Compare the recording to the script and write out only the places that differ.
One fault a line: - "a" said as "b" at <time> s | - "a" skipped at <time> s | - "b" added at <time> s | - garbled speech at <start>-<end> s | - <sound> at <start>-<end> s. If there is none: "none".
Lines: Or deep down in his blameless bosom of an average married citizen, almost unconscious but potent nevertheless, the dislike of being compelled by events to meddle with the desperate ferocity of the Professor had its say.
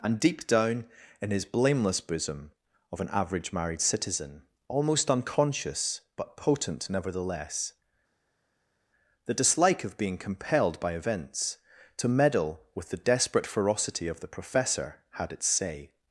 - "Or" said as "And" at 0.0 s